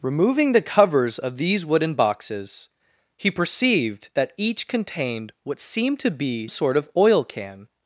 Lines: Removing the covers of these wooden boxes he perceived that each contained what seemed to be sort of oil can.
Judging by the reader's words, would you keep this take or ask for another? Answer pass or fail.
pass